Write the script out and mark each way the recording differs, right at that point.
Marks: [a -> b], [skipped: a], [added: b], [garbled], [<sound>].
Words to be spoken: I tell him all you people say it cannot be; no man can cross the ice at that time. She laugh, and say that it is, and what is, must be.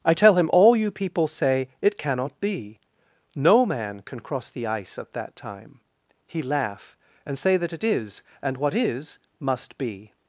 I tell him all you people say it cannot be; no man can cross the ice at that time. [She -> He] laugh, and say that it is, and what is, must be.